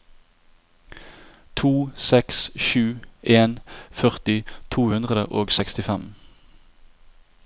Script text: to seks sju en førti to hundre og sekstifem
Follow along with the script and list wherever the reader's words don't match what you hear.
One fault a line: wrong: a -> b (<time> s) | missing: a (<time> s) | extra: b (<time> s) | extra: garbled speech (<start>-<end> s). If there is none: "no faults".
no faults